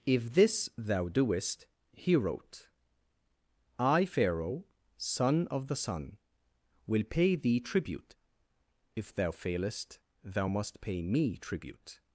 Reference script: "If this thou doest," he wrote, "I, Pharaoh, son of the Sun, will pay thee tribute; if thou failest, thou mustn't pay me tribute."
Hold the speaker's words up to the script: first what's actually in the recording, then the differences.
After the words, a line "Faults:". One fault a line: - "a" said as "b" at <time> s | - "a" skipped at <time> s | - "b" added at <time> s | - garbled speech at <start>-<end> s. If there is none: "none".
"If this thou doest," he wrote, "I, Pharaoh, son of the Sun, will pay thee tribute; if thou failest, thou must pay me tribute."
Faults:
- "mustn't" said as "must" at 10.5 s